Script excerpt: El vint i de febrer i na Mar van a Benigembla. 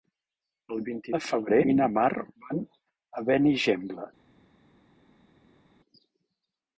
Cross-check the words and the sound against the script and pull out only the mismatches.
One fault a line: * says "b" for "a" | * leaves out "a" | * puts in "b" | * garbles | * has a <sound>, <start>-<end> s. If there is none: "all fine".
all fine